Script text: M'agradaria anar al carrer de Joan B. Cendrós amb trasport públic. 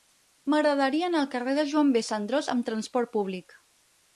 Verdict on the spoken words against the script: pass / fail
pass